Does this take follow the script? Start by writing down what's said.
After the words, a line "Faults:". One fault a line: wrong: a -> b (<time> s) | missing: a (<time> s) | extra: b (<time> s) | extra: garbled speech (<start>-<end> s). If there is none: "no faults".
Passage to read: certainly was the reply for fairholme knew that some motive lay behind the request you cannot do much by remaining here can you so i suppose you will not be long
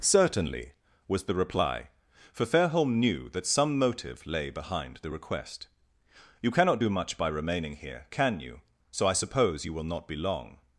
certainly was the reply for fairholme knew that some motive lay behind the request you cannot do much by remaining here can you so i suppose you will not be long
Faults:
no faults